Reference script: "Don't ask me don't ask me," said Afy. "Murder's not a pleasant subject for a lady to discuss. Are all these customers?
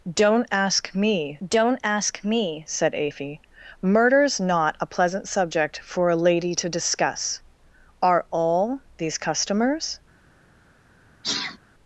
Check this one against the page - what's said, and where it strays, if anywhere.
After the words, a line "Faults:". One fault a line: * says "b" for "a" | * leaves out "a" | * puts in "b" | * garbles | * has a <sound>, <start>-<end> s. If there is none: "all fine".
"Don't ask me don't ask me," said Afy. "Murder's not a pleasant subject for a lady to discuss. Are all these customers?
Faults:
* has a sneeze, 11.2-11.6 s